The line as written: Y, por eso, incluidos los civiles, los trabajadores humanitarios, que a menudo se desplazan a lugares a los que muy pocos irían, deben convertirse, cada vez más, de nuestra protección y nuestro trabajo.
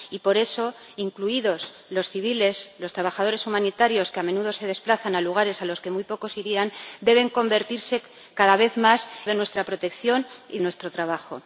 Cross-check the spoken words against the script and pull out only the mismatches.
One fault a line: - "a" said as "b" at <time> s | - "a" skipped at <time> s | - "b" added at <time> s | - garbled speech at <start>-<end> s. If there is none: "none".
none